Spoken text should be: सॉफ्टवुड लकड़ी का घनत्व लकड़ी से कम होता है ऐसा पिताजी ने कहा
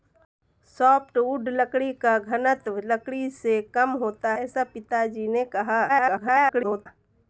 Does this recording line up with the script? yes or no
no